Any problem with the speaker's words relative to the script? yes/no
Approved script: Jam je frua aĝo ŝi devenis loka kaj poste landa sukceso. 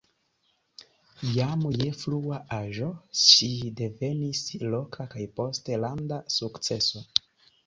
no